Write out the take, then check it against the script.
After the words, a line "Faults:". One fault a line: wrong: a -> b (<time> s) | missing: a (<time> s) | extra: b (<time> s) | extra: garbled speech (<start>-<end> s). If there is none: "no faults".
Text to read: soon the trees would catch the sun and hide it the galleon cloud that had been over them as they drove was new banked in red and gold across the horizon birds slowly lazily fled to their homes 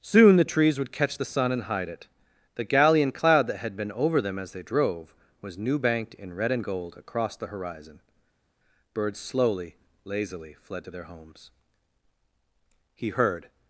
soon the trees would catch the sun and hide it the galleon cloud that had been over them as they drove was new banked in red and gold across the horizon birds slowly lazily fled to their homes he heard
Faults:
extra: he heard (13.0 s)